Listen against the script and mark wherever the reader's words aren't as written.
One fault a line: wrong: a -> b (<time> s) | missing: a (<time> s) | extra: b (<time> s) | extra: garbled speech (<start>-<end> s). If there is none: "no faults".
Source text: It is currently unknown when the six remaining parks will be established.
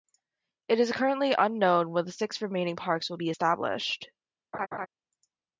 no faults